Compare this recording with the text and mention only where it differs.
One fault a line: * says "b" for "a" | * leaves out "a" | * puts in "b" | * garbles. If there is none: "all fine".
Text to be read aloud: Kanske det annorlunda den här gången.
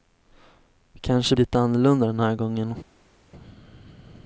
all fine